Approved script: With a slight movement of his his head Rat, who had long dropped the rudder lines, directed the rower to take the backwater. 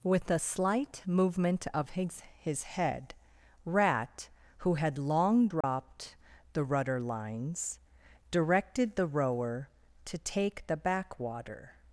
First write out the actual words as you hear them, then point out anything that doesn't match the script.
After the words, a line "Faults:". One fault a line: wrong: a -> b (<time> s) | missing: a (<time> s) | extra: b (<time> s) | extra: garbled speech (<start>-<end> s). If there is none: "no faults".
With a slight movement of his his head Rat, who had long dropped the rudder lines, directed the rower to take the backwater.
Faults:
no faults